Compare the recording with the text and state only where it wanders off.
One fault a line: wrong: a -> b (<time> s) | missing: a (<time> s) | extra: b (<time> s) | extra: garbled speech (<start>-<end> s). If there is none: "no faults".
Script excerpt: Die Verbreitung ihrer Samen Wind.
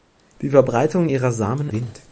no faults